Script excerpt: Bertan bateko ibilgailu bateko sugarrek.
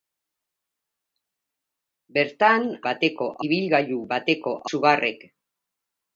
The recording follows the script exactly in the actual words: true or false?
true